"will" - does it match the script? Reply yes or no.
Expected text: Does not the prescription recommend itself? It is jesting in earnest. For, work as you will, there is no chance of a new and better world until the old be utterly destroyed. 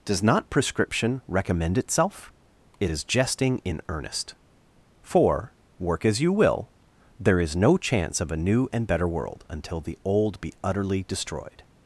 yes